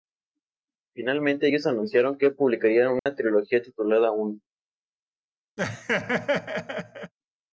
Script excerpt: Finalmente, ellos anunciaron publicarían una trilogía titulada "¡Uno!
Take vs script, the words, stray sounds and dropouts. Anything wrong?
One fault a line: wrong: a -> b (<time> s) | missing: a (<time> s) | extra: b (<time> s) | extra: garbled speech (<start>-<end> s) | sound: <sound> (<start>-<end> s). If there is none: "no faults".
extra: que (2.2 s)
sound: dropout (3.0-3.1 s)
sound: laugh (5.6-7.1 s)